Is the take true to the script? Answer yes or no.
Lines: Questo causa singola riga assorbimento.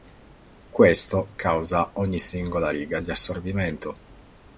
no